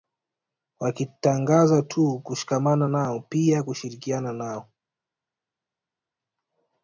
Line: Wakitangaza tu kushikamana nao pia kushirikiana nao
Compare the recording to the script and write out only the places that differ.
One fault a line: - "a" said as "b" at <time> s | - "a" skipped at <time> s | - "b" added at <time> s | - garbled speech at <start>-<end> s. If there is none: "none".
none